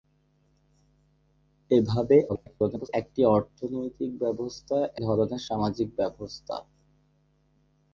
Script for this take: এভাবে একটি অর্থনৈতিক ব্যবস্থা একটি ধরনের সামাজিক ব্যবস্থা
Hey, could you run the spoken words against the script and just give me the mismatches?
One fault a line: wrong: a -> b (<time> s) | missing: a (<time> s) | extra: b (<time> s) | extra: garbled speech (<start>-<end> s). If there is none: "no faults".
extra: garbled speech (2.3-2.9 s)
missing: একটি (4.8 s)